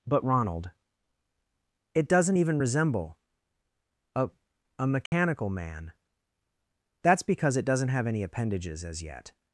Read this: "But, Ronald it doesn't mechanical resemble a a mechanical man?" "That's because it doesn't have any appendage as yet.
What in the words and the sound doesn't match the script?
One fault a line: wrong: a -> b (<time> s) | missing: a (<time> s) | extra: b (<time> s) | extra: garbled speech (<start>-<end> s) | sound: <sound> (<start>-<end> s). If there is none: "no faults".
wrong: mechanical -> even (2.4 s)
sound: dropout (5.1-5.1 s)
wrong: appendage -> appendages (8.2 s)